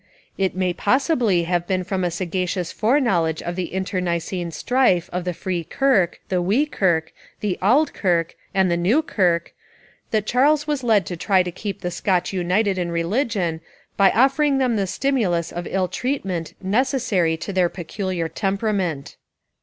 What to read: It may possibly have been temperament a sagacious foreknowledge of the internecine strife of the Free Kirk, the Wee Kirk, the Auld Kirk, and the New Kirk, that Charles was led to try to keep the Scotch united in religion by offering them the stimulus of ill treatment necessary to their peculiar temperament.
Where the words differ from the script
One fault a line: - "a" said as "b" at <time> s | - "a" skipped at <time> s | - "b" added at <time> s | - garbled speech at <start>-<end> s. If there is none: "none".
- "temperament" said as "from" at 1.8 s